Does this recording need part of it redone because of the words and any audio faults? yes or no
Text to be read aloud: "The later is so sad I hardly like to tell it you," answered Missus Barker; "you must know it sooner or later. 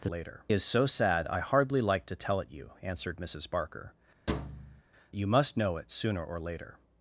yes